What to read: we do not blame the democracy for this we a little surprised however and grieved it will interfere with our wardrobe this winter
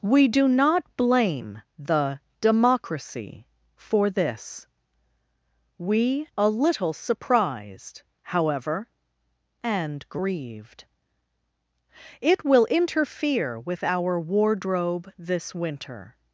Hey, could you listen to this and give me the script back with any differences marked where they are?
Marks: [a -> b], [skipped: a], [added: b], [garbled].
we do not blame the democracy for this we a little surprised however and grieved it will interfere with our wardrobe this winter